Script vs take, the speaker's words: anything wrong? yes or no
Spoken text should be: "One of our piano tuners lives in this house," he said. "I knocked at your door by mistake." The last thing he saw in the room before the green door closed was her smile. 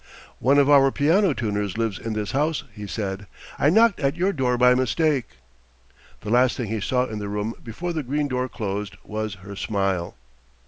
no